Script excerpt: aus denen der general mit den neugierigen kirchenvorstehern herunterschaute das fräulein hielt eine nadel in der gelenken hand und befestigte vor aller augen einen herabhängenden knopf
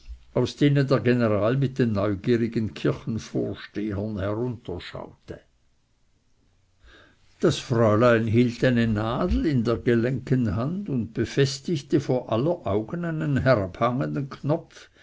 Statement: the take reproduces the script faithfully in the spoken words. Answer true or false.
true